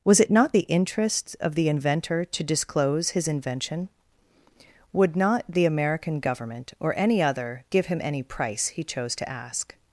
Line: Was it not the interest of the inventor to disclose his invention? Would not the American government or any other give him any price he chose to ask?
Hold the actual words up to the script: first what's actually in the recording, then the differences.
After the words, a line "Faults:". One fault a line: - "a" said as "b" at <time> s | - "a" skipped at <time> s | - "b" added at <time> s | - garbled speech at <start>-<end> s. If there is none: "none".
Was it not the interest of the inventor to disclose his invention? Would not the American government or any other give him any price he chose to ask?
Faults:
none